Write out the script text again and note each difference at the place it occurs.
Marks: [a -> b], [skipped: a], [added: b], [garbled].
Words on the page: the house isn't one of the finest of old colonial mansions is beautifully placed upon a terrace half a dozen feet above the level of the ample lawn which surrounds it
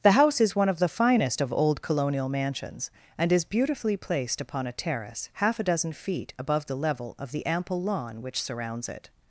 the house [isn't -> is] one of the finest of old colonial mansions [added: and] is beautifully placed upon a terrace half a dozen feet above the level of the ample lawn which surrounds it